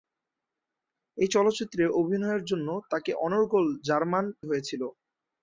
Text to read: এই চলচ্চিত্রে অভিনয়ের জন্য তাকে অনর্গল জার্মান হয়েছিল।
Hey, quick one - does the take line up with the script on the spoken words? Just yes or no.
yes